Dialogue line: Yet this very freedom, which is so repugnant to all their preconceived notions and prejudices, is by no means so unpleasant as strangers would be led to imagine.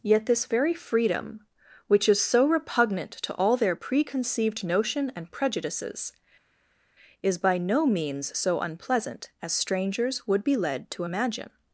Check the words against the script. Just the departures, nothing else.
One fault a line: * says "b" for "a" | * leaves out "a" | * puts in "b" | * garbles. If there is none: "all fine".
* says "notion" for "notions"